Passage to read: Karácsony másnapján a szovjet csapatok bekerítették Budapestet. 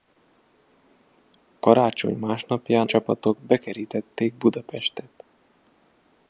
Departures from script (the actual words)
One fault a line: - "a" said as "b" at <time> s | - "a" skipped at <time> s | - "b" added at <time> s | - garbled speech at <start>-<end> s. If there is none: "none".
- "a szovjet" skipped at 2.9 s